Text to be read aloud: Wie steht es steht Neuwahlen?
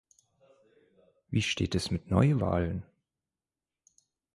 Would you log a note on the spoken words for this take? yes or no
yes